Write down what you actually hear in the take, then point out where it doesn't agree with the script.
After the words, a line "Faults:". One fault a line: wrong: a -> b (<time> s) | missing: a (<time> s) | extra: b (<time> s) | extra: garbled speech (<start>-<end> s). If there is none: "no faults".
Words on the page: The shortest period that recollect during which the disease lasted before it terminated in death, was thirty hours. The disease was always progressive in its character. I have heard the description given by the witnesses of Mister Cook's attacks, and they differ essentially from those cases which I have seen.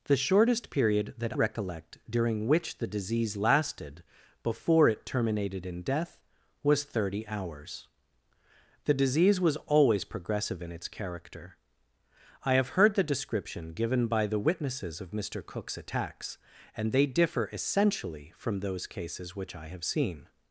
The shortest period that recollect during which the disease lasted before it terminated in death, was thirty hours. The disease was always progressive in its character. I have heard the description given by the witnesses of Mister Cook's attacks, and they differ essentially from those cases which I have seen.
Faults:
no faults